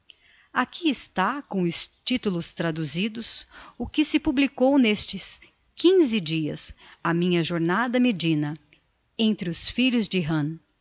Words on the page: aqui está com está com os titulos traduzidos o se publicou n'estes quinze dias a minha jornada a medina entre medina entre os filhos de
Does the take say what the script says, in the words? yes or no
no